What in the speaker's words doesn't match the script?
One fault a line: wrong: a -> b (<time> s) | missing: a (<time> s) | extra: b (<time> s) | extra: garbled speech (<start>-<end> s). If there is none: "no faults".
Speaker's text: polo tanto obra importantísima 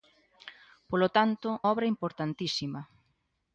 no faults